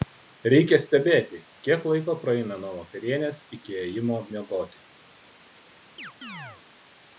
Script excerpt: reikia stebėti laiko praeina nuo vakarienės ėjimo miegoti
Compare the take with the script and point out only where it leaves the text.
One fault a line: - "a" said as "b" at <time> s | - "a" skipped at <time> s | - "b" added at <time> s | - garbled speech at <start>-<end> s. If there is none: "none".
- "kiek" added at 1.7 s
- "iki" added at 3.6 s